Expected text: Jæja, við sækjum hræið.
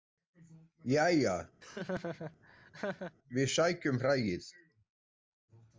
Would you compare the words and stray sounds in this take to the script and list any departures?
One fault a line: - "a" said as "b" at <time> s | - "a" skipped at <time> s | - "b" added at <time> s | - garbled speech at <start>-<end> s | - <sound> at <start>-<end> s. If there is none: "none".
- laugh at 1.6-3.2 s